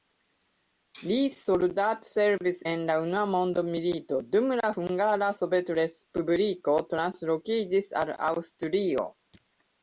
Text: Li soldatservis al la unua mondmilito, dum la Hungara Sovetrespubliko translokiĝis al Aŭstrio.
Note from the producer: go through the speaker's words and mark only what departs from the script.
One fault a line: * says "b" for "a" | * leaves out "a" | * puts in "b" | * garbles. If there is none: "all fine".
* says "en" for "al"